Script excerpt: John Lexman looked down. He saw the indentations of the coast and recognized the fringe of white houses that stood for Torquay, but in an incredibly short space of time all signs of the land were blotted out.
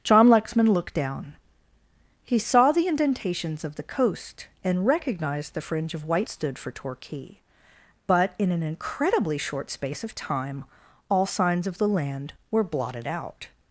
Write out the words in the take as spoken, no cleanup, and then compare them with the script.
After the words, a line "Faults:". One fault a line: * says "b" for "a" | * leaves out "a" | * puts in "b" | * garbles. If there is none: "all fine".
John Lexman looked down. He saw the indentations of the coast and recognized the fringe of white stood for Torquay, but in an incredibly short space of time all signs of the land were blotted out.
Faults:
* leaves out "houses that"